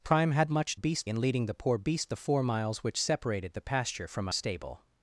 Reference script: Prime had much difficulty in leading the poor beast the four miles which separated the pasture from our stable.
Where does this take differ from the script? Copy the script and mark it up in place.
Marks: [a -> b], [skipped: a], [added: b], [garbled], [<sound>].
Prime had much [difficulty -> beast] in leading the poor beast the four miles which separated the pasture from [skipped: our] stable.